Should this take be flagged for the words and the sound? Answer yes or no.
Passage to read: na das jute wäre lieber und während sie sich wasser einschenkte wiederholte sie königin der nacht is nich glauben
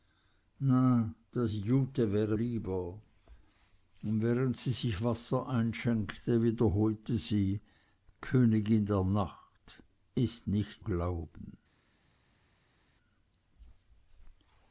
no